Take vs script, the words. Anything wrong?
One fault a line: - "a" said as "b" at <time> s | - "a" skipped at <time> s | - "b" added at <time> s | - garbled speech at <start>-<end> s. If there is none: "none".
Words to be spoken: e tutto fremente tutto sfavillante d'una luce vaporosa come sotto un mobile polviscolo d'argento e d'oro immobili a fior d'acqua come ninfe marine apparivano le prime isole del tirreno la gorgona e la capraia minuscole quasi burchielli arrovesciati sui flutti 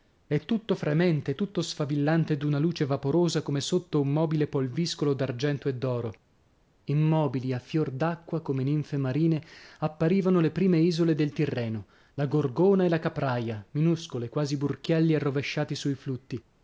none